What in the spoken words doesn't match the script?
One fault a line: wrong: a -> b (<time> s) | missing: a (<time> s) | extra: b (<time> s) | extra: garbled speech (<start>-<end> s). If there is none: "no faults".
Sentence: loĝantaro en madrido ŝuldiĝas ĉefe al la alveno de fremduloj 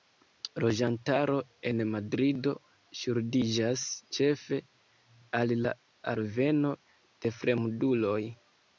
no faults